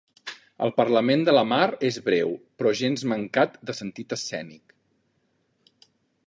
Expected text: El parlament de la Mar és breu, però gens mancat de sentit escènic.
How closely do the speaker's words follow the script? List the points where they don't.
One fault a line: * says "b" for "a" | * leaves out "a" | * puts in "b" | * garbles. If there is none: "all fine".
all fine